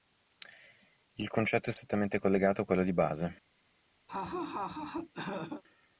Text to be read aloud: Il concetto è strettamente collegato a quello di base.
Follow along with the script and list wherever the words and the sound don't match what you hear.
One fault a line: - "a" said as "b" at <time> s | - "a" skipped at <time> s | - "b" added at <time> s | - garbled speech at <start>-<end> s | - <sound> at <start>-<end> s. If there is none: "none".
- laugh at 4.1-5.6 s